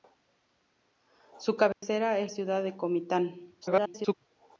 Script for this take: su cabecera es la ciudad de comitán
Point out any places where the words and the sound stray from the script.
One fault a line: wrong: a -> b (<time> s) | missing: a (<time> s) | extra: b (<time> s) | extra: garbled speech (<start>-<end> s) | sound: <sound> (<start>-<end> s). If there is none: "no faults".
sound: dropout (1.7-1.8 s)
missing: la (2.3 s)
extra: garbled speech (3.6-4.1 s)